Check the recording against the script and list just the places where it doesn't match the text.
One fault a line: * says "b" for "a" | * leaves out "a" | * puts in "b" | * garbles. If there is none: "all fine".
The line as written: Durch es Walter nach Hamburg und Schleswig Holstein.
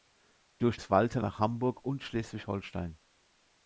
all fine